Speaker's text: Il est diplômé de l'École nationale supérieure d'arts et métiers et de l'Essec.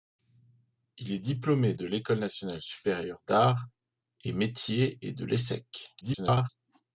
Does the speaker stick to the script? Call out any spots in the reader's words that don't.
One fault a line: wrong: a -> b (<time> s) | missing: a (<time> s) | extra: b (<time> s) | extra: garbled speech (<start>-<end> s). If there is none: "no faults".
extra: garbled speech (6.0-6.5 s)